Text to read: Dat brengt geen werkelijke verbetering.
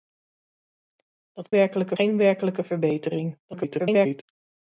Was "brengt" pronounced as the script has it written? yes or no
no